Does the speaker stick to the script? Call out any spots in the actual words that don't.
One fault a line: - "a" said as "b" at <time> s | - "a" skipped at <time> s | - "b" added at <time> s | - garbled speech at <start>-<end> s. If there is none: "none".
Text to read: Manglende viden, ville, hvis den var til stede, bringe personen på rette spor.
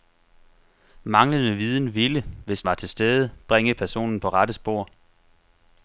- "den" skipped at 2.6 s